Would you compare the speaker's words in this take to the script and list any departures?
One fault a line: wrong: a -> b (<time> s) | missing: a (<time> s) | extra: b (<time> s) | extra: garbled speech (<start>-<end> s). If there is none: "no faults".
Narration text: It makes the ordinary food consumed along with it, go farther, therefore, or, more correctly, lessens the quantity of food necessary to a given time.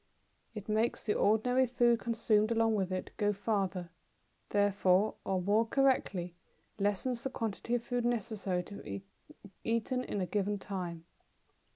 extra: be eaten in (8.8 s)